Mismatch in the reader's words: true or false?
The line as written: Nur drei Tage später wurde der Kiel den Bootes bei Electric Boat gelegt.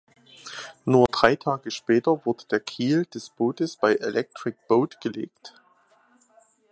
true